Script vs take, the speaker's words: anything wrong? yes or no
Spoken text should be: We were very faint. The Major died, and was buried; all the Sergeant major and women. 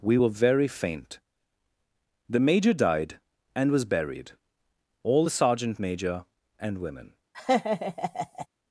no